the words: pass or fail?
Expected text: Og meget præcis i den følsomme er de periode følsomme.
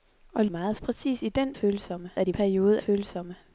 pass